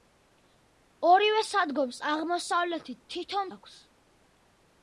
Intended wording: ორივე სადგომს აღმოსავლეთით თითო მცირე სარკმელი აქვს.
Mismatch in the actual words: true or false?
true